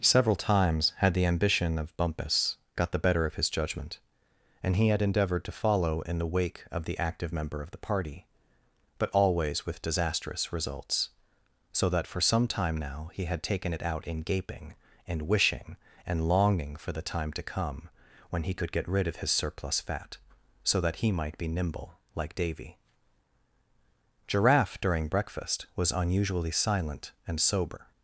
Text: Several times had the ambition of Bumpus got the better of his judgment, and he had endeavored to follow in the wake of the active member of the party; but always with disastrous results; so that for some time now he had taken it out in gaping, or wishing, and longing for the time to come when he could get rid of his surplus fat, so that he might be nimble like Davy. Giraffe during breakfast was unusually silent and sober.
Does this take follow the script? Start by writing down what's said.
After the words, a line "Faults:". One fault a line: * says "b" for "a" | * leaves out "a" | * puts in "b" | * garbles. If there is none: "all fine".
Several times had the ambition of Bumpus got the better of his judgment, and he had endeavored to follow in the wake of the active member of the party; but always with disastrous results; so that for some time now he had taken it out in gaping, and wishing, and longing for the time to come when he could get rid of his surplus fat, so that he might be nimble like Davy. Giraffe during breakfast was unusually silent and sober.
Faults:
* says "and" for "or"